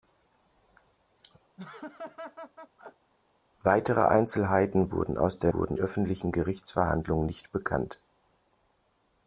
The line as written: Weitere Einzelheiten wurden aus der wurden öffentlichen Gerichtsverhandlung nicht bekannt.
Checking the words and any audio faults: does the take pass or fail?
fail